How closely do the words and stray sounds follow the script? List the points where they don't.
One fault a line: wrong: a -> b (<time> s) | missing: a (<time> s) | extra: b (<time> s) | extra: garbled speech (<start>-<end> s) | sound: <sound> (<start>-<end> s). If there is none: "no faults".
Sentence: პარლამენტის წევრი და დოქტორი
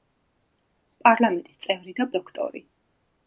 no faults